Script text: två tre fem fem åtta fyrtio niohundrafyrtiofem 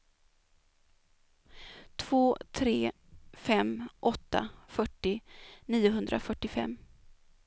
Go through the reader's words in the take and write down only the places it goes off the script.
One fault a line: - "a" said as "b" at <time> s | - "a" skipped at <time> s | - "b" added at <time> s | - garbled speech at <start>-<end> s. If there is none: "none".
- "fem" skipped at 3.9 s